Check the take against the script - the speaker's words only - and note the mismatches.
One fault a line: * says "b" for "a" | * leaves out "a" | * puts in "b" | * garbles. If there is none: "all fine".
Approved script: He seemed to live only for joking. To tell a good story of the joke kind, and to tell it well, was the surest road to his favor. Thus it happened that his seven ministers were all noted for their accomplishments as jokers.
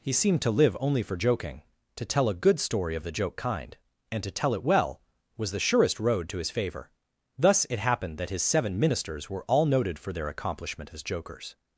* says "accomplishment" for "accomplishments"